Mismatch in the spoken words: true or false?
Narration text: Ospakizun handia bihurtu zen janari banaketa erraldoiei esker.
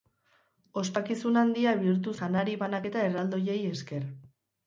true